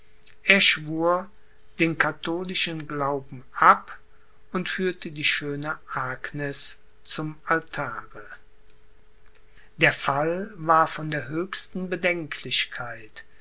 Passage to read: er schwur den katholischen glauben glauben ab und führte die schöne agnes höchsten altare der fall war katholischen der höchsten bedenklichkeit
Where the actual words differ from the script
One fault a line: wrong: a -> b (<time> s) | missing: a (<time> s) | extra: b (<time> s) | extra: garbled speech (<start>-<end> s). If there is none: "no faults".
missing: glauben (3.5 s)
wrong: höchsten -> zum (7.0 s)
wrong: katholischen -> von (10.9 s)